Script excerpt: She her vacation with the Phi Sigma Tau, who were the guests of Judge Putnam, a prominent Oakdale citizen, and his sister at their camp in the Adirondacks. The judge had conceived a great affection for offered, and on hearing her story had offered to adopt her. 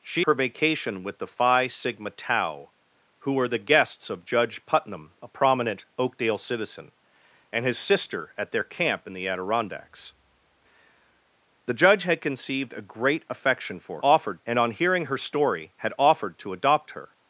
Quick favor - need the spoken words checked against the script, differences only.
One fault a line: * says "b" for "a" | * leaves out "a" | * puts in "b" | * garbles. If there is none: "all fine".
all fine